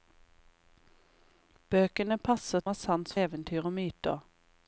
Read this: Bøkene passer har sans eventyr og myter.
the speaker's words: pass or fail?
pass